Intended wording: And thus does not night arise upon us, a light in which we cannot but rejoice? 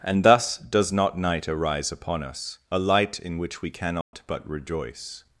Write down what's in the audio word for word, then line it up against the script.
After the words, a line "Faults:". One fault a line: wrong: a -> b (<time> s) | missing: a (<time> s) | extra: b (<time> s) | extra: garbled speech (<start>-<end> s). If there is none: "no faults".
And thus does not night arise upon us, a light in which we cannot but rejoice?
Faults:
no faults